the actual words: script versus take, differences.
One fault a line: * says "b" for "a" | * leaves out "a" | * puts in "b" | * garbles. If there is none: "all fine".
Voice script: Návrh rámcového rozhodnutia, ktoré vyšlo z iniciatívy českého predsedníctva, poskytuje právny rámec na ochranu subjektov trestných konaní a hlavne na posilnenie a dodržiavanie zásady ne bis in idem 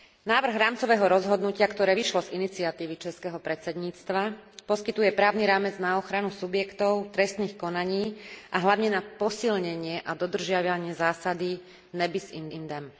* puts in "in"